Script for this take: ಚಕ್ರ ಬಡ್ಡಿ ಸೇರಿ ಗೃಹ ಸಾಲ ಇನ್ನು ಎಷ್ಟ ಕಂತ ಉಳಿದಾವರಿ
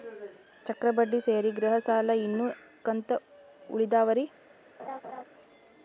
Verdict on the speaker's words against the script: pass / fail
fail